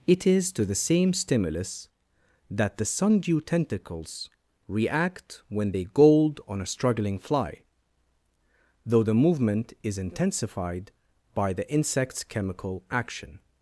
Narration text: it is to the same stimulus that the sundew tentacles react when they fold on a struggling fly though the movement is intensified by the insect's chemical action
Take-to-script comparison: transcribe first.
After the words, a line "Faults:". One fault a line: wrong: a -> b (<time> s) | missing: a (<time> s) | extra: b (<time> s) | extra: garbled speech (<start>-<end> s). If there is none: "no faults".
it is to the same stimulus that the sundew tentacles react when they gold on a struggling fly though the movement is intensified by the insect's chemical action
Faults:
wrong: fold -> gold (5.9 s)